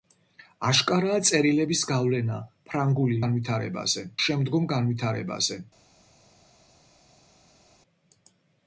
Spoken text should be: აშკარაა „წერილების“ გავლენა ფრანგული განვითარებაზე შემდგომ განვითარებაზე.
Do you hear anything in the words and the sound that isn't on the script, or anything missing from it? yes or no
no